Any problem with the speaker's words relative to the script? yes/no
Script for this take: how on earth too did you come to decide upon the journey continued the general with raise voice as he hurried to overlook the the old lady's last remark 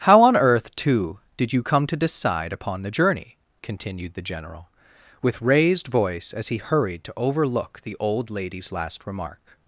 yes